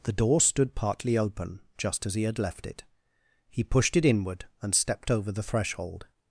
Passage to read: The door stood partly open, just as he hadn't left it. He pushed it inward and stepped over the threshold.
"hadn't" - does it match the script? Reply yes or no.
no